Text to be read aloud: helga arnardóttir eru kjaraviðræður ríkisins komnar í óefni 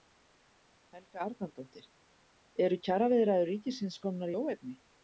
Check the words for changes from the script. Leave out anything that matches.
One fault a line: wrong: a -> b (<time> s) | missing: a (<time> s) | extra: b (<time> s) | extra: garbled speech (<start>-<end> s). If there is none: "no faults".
no faults